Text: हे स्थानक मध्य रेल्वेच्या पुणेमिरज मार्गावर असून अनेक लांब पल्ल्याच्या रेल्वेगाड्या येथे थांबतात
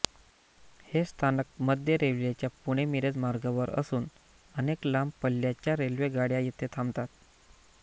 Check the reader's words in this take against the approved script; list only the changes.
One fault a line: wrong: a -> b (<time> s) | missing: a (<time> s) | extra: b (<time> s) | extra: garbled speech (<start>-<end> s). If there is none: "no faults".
no faults